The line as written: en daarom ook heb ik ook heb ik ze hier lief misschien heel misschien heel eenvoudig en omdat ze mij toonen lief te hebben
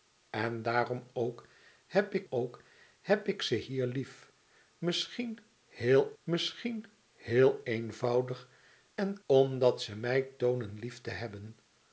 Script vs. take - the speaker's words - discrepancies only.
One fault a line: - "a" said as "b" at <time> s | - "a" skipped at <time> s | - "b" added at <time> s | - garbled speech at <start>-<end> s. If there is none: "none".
none